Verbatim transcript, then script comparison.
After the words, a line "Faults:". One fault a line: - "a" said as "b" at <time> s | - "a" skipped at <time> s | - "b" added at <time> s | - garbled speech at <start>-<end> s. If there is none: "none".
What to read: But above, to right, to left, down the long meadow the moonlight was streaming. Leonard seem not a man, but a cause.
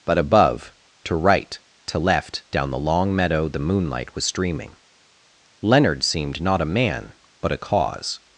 But above, to right, to left, down the long meadow the moonlight was streaming. Leonard seemed not a man, but a cause.
Faults:
- "seem" said as "seemed" at 6.0 s